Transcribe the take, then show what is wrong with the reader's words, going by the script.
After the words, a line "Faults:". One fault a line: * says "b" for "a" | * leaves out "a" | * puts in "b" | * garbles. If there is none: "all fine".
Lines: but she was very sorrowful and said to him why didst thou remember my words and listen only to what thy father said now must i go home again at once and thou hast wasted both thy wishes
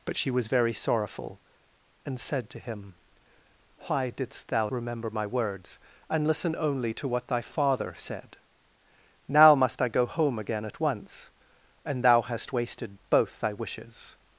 but she was very sorrowful and said to him why didst thou remember my words and listen only to what thy father said now must i go home again at once and thou hast wasted both thy wishes
Faults:
all fine